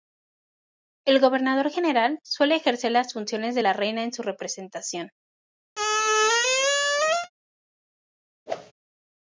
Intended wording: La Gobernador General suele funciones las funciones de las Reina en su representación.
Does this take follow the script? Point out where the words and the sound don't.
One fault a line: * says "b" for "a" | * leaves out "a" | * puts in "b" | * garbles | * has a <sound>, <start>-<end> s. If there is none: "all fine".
* says "El" for "La"
* says "ejercer" for "funciones"
* says "la" for "las"
* has a squeak, 5.7-7.3 s
* has a whoosh, 8.5-8.7 s